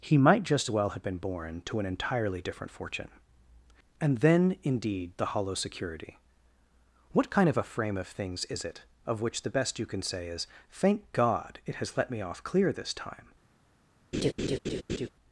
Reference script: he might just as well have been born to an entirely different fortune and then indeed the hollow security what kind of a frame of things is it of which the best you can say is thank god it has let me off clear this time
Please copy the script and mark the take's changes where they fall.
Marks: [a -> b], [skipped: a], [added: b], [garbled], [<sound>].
he might just [skipped: as] well have been born to an entirely different fortune and then indeed the hollow security what kind of a frame of things is it of which the best you can say is thank god it has let me off clear this time [laugh]